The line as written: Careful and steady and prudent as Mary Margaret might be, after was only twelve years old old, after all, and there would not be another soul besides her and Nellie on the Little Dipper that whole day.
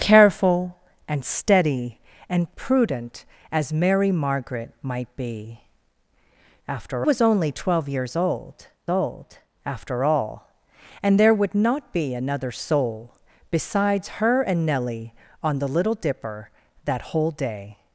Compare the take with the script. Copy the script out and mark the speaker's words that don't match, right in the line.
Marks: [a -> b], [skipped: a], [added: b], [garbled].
Careful and steady and prudent as Mary Margaret might be, after was only twelve years old old, after all, and there would not be another soul besides her and Nellie on the Little Dipper that whole day.